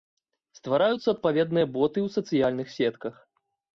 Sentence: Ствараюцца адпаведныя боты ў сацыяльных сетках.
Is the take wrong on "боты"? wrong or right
right